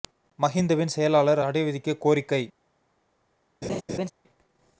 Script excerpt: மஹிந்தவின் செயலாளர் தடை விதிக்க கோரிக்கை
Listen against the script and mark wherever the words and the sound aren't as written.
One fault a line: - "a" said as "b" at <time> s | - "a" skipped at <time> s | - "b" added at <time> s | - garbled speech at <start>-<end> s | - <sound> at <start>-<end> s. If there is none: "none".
- laugh at 3.6-4.1 s